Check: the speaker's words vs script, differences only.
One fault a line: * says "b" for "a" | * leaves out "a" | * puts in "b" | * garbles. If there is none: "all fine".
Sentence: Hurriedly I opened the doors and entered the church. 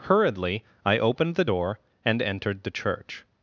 * says "door" for "doors"